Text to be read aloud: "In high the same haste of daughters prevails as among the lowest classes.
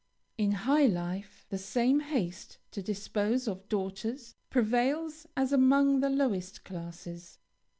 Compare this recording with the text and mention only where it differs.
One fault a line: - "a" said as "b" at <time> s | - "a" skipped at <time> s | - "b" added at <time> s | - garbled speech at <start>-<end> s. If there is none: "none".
- "life" added at 0.9 s
- "to dispose" added at 2.7 s